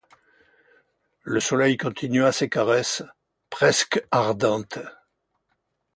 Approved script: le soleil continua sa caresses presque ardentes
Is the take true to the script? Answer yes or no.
no